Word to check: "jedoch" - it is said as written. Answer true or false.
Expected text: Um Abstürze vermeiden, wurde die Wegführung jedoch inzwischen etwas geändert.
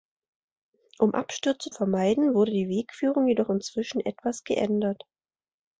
true